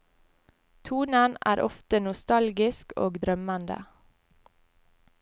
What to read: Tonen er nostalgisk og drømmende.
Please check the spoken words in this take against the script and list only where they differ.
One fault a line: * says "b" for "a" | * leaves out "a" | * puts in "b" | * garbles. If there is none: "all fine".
* puts in "ofte"